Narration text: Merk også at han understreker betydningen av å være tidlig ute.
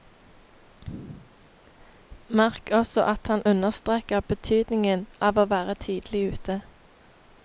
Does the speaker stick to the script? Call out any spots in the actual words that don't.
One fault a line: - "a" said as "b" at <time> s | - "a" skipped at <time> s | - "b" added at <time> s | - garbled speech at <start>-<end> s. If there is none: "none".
none